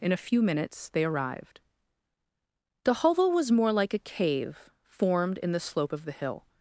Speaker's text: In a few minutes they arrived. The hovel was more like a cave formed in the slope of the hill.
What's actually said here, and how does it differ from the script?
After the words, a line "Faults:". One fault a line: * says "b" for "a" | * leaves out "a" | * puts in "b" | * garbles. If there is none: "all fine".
In a few minutes they arrived. The hovel was more like a cave formed in the slope of the hill.
Faults:
all fine